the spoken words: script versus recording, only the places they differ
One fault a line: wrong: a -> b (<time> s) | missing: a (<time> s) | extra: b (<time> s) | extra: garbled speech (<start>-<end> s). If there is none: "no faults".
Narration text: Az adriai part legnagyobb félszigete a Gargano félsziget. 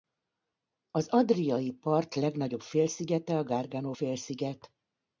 no faults